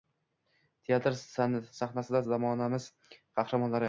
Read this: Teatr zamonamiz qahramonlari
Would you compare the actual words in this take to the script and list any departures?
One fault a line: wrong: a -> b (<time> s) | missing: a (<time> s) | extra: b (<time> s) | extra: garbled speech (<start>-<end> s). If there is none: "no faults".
extra: sahnasida (1.2 s)